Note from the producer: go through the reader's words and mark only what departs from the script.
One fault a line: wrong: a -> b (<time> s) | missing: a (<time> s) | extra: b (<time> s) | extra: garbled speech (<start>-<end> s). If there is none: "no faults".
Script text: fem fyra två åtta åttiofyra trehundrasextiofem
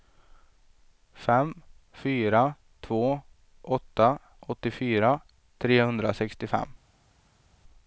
no faults